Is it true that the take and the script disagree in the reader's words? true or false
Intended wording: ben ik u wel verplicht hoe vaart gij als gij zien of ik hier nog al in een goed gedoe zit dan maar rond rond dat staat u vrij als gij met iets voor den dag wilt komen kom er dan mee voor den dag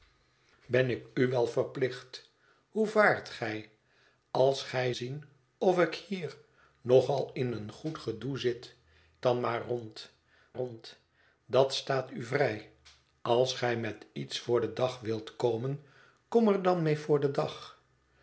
false